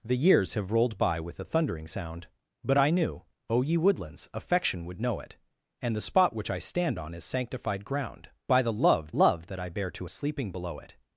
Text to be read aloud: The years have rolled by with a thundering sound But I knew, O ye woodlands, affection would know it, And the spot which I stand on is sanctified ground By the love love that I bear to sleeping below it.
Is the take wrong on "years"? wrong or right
right